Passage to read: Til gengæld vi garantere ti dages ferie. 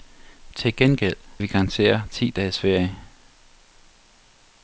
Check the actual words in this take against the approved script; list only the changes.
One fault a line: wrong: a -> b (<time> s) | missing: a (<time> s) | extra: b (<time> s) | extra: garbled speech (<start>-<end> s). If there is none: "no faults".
no faults